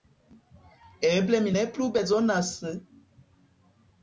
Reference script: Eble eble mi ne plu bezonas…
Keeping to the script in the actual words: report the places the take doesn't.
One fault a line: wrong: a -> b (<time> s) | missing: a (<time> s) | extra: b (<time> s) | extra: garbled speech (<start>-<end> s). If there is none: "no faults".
missing: eble (1.4 s)